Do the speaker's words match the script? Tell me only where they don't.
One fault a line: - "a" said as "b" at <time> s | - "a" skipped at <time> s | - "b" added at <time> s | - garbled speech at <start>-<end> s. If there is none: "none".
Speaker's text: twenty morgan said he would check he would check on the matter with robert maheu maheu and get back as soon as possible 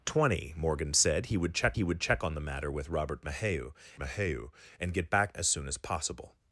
none